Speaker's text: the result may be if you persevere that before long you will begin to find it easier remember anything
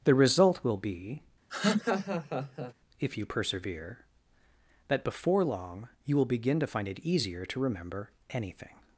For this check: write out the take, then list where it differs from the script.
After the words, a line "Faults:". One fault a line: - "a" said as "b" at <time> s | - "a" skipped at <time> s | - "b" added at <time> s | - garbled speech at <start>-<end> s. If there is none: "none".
the result will be if you persevere that before long you will begin to find it easier to remember anything
Faults:
- "may" said as "will" at 0.6 s
- "to" added at 7.5 s